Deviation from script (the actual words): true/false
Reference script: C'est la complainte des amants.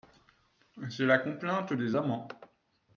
false